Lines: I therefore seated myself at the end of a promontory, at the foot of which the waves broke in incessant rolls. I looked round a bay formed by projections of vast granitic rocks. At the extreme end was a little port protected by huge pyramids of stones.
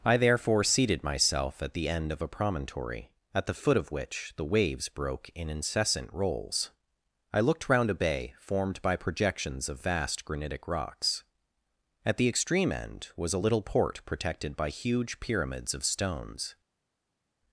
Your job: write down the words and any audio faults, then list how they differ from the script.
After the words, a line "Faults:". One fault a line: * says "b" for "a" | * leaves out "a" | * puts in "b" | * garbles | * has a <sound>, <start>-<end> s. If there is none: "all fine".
I therefore seated myself at the end of a promontory, at the foot of which the waves broke in incessant rolls. I looked round a bay formed by projections of vast granitic rocks. At the extreme end was a little port protected by huge pyramids of stones.
Faults:
all fine